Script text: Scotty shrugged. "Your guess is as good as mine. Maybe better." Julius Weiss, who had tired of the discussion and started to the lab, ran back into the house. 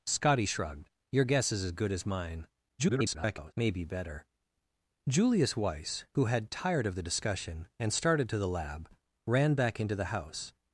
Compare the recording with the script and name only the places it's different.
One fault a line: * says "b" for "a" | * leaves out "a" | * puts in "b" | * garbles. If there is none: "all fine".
* garbles